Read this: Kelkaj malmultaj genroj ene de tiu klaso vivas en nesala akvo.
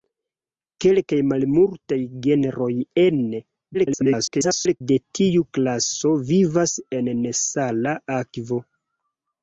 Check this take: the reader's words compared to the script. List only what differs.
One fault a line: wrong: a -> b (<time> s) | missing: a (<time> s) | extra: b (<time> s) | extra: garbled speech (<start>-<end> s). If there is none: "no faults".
extra: garbled speech (3.7-4.8 s)